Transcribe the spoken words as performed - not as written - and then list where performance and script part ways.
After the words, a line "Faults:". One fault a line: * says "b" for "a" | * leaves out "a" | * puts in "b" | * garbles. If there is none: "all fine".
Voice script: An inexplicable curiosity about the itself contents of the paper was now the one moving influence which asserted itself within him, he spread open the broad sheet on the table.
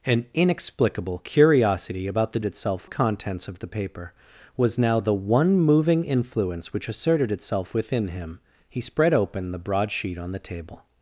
An inexplicable curiosity about the itself contents of the paper was now the one moving influence which asserted itself within him, he spread open the broad sheet on the table.
Faults:
all fine